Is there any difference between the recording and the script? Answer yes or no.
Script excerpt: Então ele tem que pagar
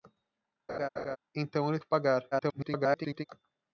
yes